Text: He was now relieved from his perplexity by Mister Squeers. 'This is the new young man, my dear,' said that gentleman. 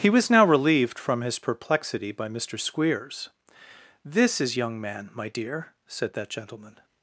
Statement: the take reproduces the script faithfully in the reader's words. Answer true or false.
false